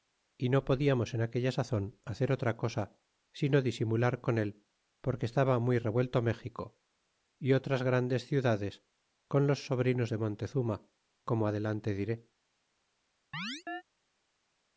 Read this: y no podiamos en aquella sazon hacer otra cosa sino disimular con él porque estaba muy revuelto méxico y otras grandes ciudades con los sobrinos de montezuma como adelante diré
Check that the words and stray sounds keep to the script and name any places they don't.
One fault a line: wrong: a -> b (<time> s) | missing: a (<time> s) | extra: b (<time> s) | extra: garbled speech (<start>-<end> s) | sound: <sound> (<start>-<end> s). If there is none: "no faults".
sound: chirp (13.3-13.8 s)